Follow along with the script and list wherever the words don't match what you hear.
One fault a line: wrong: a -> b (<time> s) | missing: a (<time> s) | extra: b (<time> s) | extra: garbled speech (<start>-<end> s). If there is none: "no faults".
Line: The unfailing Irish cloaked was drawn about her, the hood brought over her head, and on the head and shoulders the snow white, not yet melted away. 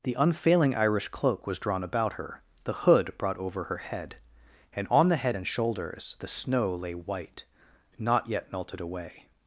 wrong: cloaked -> cloak (1.1 s)
extra: lay (6.8 s)